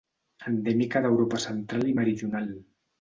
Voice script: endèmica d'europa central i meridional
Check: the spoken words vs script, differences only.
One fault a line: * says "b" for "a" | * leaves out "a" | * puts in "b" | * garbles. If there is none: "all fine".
all fine